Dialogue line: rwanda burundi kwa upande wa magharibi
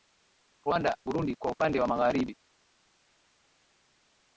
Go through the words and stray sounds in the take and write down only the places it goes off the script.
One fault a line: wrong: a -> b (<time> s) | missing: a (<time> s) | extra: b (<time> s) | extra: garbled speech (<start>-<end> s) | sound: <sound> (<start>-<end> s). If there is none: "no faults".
no faults